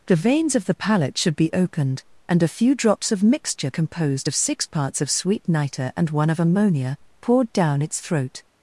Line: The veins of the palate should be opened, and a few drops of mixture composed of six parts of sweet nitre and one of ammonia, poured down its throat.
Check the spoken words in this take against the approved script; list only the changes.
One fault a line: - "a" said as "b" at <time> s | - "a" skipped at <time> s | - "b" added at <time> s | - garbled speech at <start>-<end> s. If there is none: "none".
none